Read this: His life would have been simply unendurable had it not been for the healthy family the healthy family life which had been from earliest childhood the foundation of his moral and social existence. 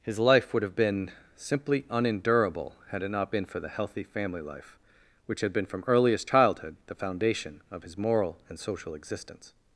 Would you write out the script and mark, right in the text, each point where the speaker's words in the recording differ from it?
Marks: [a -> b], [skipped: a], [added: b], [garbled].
His life would have been simply unendurable had it not been for the healthy family [skipped: the healthy family] life which had been from earliest childhood the foundation of his moral and social existence.